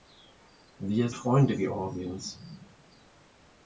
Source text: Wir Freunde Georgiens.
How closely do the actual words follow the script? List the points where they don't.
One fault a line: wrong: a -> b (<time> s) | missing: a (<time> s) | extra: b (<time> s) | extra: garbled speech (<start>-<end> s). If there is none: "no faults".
no faults